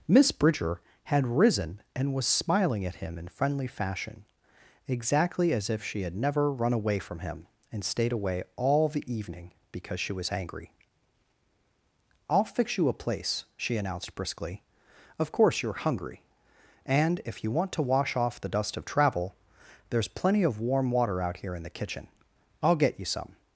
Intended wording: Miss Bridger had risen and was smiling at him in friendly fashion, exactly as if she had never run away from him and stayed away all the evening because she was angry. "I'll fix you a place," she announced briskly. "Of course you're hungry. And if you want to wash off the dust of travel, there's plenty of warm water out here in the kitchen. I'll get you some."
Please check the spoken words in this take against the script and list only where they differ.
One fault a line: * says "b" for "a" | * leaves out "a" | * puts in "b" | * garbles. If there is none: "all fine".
all fine